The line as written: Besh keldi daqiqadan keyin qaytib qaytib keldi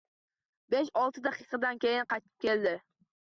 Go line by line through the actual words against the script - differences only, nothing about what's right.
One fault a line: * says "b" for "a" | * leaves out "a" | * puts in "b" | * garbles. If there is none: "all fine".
* says "olti" for "keldi"
* leaves out "qaytib"